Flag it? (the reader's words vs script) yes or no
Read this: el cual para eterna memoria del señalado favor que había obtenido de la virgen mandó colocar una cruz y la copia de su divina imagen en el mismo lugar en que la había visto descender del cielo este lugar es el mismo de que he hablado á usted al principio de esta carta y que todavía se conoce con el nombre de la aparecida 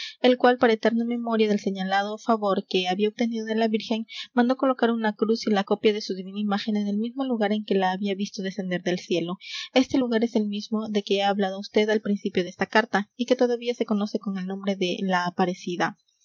no